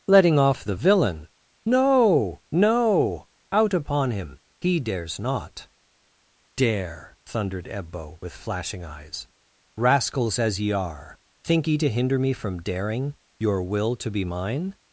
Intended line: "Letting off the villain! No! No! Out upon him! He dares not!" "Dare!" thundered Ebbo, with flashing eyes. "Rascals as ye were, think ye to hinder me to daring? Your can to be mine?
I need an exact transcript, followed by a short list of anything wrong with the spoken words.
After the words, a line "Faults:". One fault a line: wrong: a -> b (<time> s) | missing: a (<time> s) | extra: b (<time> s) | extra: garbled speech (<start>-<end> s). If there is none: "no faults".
"Letting off the villain! No! No! Out upon him! He dares not!" "Dare!" thundered Ebbo, with flashing eyes. "Rascals as ye are, think ye to hinder me from daring? Your will to be mine?
Faults:
wrong: were -> are (10.7 s)
wrong: to -> from (12.3 s)
wrong: can -> will (13.6 s)